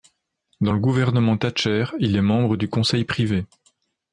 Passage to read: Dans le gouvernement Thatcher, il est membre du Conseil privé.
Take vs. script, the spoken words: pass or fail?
pass